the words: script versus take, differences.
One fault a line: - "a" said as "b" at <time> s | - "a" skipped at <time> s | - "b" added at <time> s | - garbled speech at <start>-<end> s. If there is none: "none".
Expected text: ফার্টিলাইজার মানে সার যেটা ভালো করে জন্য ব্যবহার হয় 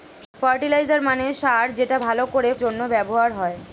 none